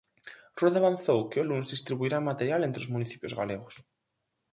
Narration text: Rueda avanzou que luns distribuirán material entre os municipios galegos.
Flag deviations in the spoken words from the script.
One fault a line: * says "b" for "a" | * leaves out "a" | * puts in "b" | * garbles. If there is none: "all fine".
all fine